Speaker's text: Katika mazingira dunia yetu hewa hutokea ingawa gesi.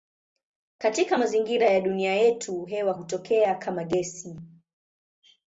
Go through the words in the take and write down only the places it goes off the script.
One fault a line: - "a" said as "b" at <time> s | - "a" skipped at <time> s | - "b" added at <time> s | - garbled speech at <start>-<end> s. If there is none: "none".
- "ya" added at 1.7 s
- "ingawa" said as "kama" at 3.6 s